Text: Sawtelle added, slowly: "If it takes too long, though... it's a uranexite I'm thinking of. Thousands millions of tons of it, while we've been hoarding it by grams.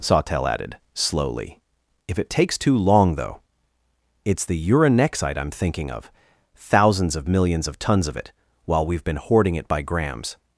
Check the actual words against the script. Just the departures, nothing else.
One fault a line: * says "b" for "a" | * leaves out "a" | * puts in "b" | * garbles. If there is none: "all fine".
* says "the" for "a"
* puts in "of"